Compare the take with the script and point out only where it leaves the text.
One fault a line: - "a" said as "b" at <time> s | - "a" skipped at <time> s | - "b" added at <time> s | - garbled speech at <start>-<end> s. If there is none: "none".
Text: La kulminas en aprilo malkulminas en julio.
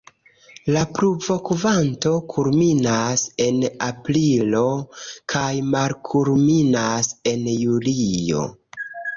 - "pluvokvanto" added at 1.0 s
- "kaj" added at 5.3 s